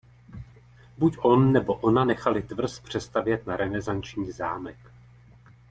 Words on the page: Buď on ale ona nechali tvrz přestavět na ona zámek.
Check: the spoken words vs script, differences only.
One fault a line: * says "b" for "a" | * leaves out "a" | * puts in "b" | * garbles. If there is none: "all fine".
* says "nebo" for "ale"
* says "renesanční" for "ona"